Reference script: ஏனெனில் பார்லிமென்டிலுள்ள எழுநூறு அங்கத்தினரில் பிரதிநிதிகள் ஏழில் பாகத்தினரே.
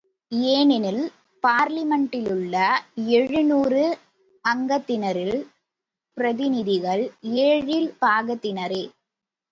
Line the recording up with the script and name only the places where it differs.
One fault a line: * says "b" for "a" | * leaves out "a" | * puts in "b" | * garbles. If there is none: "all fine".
all fine